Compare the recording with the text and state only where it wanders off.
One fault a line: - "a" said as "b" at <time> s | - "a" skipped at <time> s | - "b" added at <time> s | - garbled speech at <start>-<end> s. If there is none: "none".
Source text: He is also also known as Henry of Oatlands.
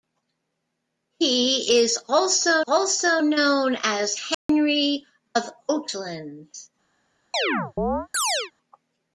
none